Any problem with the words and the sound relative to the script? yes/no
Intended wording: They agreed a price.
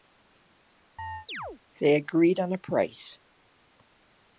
yes